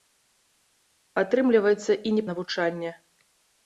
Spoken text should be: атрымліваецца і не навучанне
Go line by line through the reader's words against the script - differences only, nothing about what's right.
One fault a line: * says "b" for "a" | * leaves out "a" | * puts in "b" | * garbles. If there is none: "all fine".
all fine